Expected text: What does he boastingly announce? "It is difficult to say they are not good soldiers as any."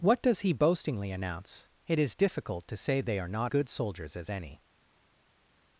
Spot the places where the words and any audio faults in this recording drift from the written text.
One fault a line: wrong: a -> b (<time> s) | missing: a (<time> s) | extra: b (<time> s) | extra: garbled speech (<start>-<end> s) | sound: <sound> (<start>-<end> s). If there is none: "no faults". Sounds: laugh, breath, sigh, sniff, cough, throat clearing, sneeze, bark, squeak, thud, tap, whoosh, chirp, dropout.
no faults